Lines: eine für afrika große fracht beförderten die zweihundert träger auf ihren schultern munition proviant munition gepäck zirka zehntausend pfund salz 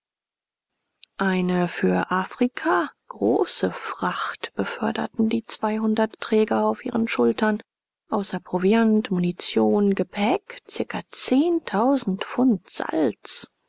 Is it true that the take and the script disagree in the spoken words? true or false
true